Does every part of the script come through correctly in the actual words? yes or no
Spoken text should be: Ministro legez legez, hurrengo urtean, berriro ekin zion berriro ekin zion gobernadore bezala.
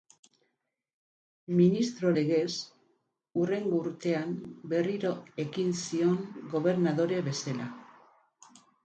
no